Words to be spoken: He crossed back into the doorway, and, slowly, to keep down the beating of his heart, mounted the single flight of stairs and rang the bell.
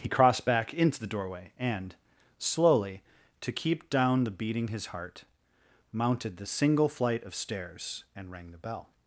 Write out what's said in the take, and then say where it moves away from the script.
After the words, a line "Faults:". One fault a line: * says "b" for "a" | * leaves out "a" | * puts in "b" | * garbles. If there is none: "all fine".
He crossed back into the doorway, and, slowly, to keep down the beating his heart, mounted the single flight of stairs and rang the bell.
Faults:
* leaves out "of"